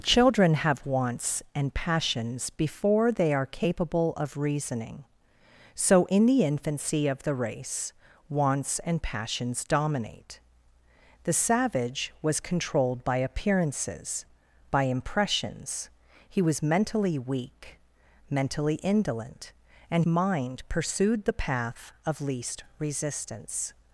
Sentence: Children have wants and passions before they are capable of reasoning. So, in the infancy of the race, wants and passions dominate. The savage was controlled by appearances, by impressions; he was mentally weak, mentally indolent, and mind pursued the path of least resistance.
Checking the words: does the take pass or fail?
pass